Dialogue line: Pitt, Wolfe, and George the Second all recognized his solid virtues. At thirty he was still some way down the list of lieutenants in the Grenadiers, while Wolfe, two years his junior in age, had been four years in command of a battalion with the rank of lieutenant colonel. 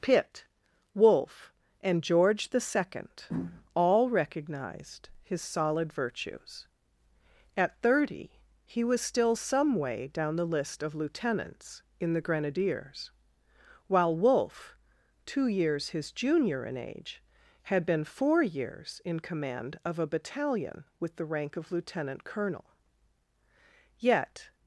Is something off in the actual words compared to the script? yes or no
yes